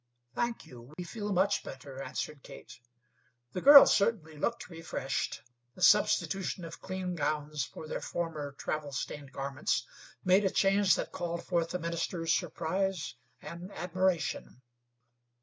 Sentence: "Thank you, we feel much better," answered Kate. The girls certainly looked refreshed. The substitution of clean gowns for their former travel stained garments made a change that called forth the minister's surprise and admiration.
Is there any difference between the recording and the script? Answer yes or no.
no